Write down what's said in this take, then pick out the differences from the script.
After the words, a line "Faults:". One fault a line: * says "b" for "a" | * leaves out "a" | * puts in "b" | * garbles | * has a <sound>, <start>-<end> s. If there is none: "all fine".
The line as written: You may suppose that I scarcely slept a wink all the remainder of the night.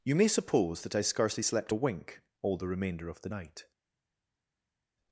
You may suppose that I scarcely slept a wink all the remainder of the night.
Faults:
all fine